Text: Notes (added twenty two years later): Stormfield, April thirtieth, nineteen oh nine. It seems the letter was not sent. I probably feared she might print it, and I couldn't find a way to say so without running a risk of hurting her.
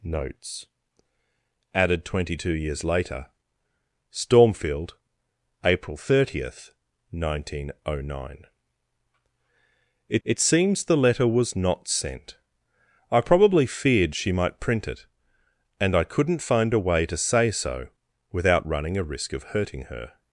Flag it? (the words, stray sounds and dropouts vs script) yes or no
yes